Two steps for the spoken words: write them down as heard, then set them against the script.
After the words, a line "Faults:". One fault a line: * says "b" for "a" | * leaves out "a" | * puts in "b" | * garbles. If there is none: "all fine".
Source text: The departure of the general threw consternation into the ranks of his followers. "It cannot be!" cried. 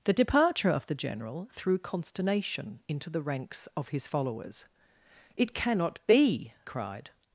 The departure of the general threw consternation into the ranks of his followers. "It cannot be!" cried.
Faults:
all fine